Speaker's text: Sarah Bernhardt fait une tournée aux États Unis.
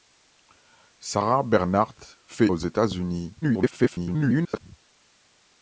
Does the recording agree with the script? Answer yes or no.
no